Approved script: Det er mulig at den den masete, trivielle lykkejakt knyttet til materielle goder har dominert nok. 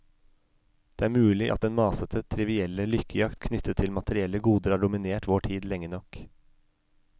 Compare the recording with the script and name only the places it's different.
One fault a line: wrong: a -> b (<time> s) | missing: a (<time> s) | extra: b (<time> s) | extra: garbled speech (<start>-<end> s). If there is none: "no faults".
missing: den (1.7 s)
extra: vår tid lenge (5.3 s)